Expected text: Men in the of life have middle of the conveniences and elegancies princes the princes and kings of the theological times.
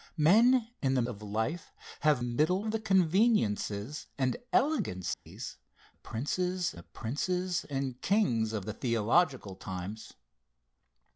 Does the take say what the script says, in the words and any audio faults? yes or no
no